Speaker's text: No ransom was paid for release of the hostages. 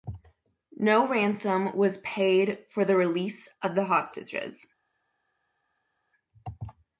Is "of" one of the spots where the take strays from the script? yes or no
no